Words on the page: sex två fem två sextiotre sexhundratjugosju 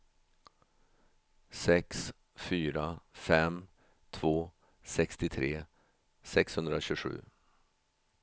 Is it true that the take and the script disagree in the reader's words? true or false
true